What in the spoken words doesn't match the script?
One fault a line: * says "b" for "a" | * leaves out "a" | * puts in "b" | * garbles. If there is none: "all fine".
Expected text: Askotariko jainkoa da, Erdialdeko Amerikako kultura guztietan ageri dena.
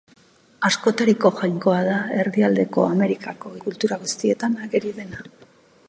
all fine